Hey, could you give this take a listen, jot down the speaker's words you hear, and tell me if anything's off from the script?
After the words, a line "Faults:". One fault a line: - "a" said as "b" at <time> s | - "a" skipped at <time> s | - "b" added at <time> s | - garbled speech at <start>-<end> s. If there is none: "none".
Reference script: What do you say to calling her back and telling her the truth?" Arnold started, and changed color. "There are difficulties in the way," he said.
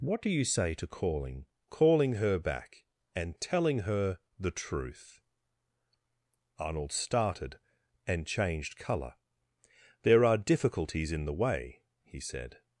What do you say to calling calling her back and telling her the truth?" Arnold started, and changed color. "There are difficulties in the way," he said.
Faults:
- "calling" added at 1.7 s